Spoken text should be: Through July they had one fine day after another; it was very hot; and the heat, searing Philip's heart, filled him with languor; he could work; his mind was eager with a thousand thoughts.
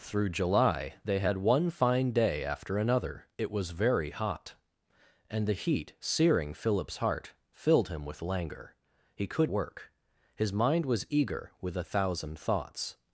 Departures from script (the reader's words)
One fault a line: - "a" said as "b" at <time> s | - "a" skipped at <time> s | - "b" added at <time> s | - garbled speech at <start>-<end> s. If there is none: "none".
none